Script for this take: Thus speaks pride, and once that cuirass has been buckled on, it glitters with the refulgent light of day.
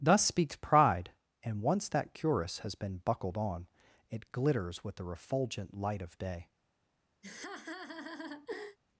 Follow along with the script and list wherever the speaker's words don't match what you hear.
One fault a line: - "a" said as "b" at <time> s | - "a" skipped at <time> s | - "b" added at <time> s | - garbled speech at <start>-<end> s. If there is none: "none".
none